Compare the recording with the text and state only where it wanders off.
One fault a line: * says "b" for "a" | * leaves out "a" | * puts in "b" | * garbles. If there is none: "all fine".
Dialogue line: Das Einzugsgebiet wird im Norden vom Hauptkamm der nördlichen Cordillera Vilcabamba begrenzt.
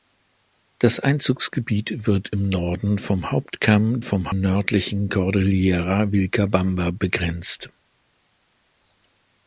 * says "vom" for "der"